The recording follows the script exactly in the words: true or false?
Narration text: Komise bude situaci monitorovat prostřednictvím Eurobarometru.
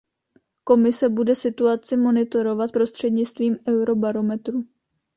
true